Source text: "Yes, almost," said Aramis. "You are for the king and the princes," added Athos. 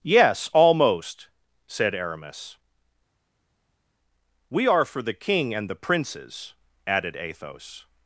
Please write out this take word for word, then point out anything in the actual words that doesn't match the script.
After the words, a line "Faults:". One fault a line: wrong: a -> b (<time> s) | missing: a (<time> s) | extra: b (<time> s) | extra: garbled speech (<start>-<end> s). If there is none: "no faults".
"Yes, almost," said Aramis. "We are for the king and the princes," added Athos.
Faults:
wrong: You -> We (4.5 s)